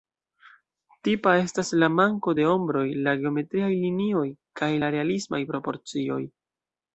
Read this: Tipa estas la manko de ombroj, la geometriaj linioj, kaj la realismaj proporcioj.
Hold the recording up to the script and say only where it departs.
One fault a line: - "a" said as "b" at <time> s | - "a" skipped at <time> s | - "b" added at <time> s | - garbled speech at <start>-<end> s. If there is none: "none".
none